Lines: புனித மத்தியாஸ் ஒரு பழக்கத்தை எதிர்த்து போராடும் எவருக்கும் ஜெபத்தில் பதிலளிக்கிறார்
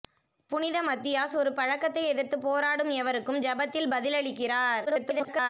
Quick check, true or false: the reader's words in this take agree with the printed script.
false